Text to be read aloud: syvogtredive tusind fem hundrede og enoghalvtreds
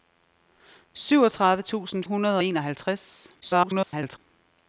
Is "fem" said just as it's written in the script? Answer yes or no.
no